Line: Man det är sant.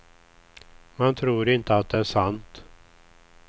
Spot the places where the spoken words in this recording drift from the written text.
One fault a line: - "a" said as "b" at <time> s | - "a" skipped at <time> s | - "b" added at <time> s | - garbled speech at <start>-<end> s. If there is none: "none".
- "tror inte att" added at 1.1 s